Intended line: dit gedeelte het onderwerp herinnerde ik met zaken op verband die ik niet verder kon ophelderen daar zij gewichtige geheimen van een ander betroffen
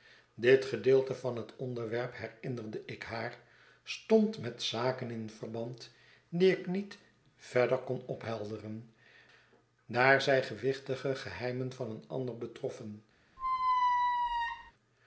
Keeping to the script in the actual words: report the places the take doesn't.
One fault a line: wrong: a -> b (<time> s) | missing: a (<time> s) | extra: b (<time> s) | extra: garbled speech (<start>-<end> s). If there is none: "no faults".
extra: van (1.1 s)
extra: haar stond (3.0 s)
wrong: op -> in (5.1 s)